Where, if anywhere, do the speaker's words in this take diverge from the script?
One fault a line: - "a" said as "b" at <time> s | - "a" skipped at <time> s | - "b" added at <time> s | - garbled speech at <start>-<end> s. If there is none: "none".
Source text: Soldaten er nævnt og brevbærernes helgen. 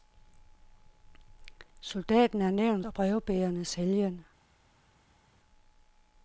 none